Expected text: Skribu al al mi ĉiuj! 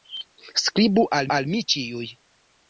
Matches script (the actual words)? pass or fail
pass